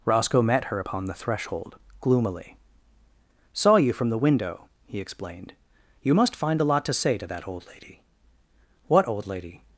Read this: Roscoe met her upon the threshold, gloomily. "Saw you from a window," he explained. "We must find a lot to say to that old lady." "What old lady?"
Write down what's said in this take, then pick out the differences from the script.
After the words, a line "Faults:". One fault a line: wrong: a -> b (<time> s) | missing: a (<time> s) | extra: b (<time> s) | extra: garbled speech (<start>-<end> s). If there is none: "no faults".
Roscoe met her upon the threshold, gloomily. "Saw you from the window," he explained. "You must find a lot to say to that old lady." "What old lady?"
Faults:
wrong: a -> the (4.1 s)
wrong: We -> You (6.0 s)